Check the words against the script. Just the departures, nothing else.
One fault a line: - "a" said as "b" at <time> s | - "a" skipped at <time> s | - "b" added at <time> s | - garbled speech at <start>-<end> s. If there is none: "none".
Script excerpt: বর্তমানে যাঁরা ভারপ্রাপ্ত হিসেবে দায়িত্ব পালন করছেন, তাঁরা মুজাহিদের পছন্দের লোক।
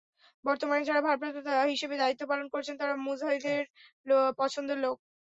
none